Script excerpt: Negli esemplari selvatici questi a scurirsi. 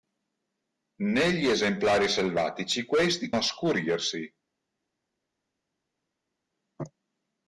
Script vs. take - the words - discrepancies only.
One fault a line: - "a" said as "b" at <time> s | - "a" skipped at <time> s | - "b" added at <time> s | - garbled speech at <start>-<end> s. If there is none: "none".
none